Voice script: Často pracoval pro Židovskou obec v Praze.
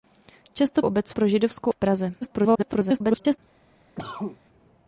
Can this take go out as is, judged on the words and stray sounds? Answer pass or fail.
fail